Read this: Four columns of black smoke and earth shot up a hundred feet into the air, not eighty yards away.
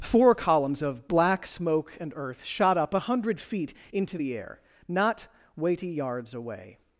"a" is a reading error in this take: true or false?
false